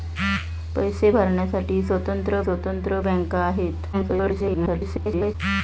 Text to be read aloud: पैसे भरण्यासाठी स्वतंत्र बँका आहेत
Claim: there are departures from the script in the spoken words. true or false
true